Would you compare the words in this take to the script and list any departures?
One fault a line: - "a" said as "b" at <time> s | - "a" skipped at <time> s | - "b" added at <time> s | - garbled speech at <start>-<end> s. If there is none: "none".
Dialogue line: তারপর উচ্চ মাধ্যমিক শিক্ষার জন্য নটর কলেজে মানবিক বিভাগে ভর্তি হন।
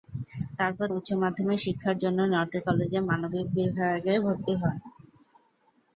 none